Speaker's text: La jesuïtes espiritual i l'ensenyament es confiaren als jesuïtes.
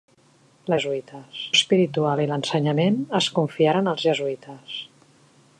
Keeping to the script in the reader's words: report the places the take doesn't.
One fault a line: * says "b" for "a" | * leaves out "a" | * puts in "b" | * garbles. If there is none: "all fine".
all fine